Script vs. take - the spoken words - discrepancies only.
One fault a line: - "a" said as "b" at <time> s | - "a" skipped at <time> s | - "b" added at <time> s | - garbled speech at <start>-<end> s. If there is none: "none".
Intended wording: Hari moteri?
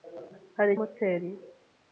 none